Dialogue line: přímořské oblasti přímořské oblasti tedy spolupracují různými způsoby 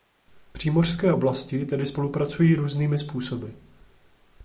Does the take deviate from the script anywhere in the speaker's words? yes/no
yes